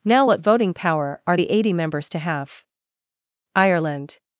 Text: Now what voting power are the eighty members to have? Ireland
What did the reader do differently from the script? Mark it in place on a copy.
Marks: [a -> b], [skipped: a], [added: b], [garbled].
Now what voting power are the eighty members to have? Ireland